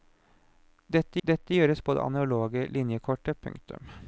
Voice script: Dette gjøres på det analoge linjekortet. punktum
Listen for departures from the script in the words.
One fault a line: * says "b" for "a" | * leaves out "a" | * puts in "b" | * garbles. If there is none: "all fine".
* puts in "dette"